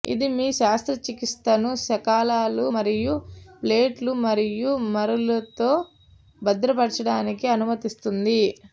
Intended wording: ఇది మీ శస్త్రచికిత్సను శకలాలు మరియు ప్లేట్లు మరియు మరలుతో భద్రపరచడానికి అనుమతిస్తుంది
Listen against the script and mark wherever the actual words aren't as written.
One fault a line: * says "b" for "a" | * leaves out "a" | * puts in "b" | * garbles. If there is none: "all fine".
all fine